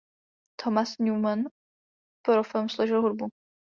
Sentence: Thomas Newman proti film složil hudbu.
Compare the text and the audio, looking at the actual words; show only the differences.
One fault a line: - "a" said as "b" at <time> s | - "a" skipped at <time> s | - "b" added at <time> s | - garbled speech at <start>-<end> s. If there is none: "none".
- "proti" said as "pro" at 2.2 s